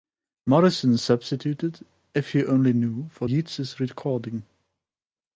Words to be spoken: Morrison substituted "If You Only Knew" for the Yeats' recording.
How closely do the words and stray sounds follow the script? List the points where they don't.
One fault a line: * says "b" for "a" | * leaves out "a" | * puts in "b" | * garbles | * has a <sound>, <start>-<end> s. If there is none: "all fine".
* leaves out "the"